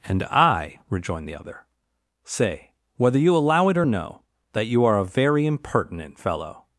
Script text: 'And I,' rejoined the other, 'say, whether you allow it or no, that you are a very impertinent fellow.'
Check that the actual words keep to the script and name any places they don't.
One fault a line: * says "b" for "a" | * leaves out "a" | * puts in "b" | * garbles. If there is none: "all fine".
all fine